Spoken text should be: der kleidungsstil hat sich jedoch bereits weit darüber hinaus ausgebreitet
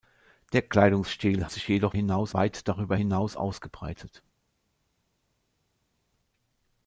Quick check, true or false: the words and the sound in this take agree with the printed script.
false